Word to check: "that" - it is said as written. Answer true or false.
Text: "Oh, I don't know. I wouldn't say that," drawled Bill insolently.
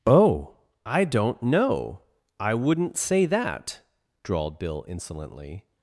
true